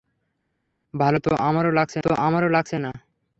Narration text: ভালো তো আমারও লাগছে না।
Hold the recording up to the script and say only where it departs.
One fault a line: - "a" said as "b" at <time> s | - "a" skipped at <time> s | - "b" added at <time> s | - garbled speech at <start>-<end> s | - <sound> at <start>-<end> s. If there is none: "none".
- "তো আমারও লাগছে" added at 2.0 s